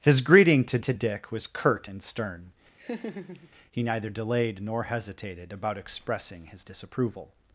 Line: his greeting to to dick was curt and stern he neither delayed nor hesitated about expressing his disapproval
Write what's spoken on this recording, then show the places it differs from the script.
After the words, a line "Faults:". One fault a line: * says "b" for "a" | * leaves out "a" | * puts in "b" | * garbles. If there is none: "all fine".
his greeting to to dick was curt and stern he neither delayed nor hesitated about expressing his disapproval
Faults:
all fine